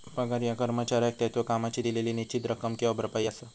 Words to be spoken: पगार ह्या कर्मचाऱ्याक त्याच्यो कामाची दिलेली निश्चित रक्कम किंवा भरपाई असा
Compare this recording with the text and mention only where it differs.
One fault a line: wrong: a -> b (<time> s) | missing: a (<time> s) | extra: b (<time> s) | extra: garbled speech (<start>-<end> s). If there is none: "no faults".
no faults